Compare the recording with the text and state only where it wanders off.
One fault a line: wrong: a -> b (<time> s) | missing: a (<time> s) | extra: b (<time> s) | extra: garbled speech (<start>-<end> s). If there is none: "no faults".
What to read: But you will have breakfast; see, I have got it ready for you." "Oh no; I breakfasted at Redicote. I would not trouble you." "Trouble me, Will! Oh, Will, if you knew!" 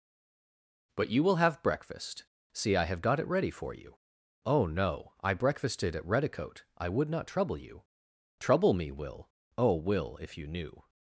no faults